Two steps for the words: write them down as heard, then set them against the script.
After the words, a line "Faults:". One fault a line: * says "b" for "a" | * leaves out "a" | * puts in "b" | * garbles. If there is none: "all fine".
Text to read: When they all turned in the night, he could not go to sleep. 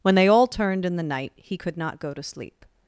When they all turned in the night, he could not go to sleep.
Faults:
all fine